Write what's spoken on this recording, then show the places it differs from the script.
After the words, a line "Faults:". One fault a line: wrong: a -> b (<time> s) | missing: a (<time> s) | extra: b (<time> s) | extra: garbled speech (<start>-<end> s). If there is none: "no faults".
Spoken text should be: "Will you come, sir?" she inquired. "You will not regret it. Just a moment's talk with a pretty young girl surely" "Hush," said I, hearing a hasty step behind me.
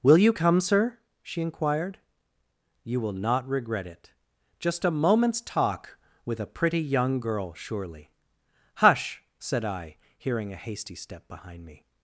"Will you come, sir?" she inquired. "You will not regret it. Just a moment's talk with a pretty young girl surely" "Hush," said I, hearing a hasty step behind me.
Faults:
no faults